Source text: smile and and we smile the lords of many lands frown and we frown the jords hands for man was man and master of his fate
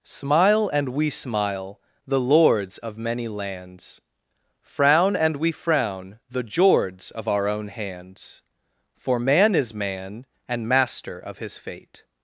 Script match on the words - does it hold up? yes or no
no